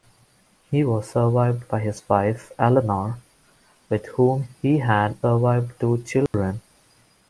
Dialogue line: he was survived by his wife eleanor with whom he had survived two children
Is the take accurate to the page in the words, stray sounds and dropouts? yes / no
no